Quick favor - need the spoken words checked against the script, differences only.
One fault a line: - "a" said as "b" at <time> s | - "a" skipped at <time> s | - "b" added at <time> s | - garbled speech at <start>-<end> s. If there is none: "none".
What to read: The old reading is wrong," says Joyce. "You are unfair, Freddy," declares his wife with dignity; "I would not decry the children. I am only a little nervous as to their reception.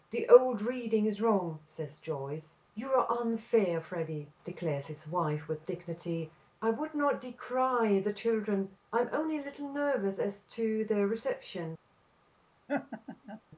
none